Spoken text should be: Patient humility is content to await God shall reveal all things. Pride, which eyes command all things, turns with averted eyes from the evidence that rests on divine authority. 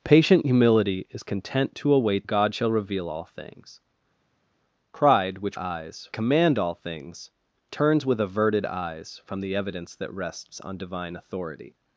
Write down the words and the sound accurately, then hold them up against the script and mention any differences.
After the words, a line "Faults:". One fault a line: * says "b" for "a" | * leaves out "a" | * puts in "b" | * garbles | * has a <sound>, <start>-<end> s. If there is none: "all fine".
Patient humility is content to await God shall reveal all things. Pride, which eyes command all things, turns with averted eyes from the evidence that rests on divine authority.
Faults:
all fine